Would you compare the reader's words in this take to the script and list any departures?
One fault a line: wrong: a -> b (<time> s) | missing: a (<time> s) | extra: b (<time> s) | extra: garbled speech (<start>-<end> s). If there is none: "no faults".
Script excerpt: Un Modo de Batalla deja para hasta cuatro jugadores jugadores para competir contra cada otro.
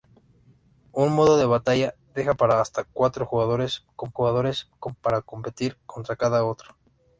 no faults